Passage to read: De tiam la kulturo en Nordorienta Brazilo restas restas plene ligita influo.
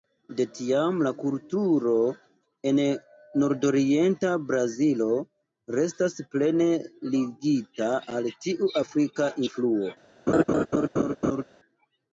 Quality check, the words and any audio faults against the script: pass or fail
fail